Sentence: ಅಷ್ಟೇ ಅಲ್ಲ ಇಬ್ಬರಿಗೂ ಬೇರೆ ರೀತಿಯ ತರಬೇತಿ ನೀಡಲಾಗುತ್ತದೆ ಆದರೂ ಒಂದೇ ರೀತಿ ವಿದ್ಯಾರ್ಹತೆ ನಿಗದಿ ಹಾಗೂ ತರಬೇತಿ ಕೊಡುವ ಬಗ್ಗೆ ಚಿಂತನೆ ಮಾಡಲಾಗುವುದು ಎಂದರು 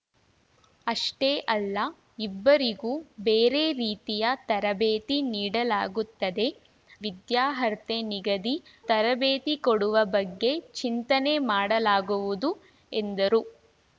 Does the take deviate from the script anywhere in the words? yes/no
yes